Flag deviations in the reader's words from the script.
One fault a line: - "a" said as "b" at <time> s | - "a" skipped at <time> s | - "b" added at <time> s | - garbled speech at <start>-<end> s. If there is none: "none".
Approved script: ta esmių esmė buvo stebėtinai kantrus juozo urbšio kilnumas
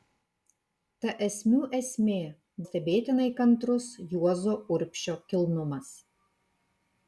- "buvo" skipped at 2.1 s